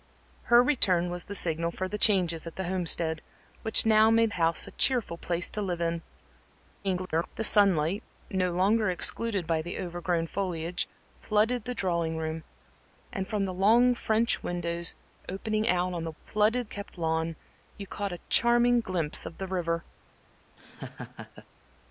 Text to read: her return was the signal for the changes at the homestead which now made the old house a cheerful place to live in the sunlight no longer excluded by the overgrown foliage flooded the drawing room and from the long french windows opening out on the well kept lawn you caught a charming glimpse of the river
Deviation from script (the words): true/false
true